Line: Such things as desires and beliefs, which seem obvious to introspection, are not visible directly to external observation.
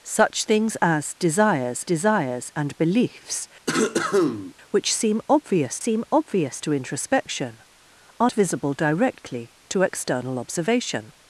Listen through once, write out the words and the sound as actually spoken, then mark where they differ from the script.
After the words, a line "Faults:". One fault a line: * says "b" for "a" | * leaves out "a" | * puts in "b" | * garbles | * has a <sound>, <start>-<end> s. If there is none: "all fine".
Such things as desires desires and beliefs, which seem obvious seem obvious to introspection, are visible directly to external observation.
Faults:
* puts in "desires"
* has a cough, 3.7-4.5 s
* puts in "seem obvious"
* leaves out "not"